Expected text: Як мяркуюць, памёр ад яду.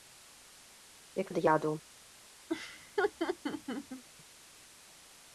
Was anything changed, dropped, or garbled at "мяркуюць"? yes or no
yes